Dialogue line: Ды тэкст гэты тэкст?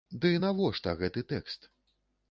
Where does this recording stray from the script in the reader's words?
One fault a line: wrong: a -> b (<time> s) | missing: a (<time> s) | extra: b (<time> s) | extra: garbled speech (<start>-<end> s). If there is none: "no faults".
wrong: тэкст -> навошта (0.4 s)